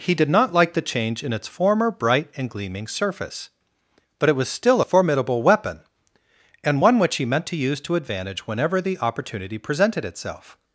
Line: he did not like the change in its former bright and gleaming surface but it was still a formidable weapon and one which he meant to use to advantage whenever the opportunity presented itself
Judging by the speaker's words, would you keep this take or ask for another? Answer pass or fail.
pass